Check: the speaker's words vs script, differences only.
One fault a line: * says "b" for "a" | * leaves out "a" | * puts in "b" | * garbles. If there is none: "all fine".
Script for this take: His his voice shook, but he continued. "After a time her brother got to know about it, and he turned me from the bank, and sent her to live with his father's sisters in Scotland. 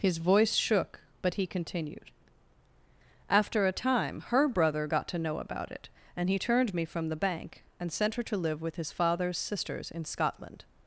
* leaves out "his"